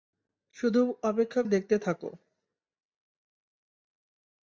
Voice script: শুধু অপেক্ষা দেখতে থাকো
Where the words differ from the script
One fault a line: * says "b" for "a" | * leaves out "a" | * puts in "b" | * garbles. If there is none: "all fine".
all fine